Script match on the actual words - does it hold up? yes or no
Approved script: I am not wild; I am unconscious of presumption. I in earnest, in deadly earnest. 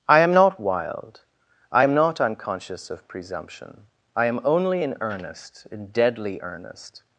no